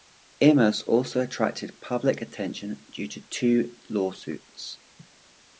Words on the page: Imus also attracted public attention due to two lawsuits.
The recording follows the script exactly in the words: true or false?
true